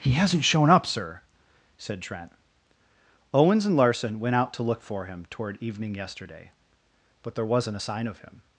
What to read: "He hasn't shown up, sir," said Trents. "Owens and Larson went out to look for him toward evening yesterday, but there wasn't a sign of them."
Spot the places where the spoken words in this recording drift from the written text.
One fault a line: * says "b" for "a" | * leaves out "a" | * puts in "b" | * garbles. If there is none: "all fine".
* says "Trent" for "Trents"
* says "him" for "them"